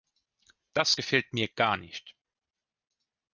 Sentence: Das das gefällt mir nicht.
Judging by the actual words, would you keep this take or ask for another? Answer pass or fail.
fail